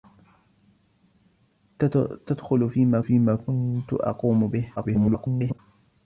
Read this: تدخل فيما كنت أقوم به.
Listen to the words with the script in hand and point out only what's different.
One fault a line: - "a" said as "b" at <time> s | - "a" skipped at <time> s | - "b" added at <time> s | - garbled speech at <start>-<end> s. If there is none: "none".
- "فيما" added at 3.0 s
- garbled speech at 4.8-5.6 s